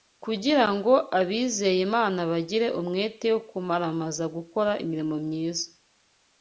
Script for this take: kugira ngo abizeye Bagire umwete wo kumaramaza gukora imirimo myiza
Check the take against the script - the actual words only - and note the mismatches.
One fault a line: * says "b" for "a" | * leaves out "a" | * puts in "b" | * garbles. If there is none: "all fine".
* puts in "Imana"